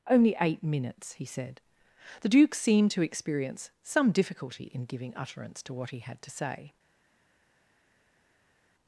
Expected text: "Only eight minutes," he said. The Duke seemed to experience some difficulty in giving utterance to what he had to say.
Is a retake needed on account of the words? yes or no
no